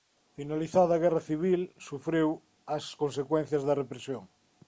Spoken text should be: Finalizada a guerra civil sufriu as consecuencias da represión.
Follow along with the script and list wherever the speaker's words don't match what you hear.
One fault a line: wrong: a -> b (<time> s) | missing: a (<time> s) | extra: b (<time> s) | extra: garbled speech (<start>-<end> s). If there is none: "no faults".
no faults